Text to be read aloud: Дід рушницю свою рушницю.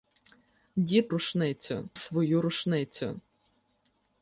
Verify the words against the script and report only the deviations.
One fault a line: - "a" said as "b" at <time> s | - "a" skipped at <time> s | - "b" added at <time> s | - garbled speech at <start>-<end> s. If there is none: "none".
none